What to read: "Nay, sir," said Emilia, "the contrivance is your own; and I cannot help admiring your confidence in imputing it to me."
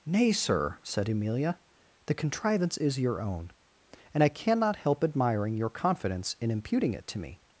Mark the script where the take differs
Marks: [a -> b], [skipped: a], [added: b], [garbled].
"Nay, sir," said Emilia, "the contrivance is your own; and I cannot help admiring your confidence in imputing it to me."